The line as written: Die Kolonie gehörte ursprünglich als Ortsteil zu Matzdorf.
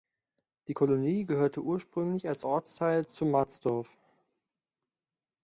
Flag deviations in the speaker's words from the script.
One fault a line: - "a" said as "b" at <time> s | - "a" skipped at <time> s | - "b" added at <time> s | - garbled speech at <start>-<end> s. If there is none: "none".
none